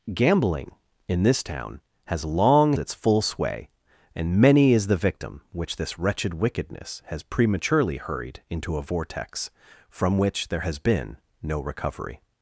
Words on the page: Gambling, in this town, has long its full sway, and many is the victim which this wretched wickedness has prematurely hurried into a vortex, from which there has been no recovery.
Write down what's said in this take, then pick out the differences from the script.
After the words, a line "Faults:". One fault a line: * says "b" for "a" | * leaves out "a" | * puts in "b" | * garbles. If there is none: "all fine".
Gambling, in this town, has long its full sway, and many is the victim which this wretched wickedness has prematurely hurried into a vortex, from which there has been no recovery.
Faults:
all fine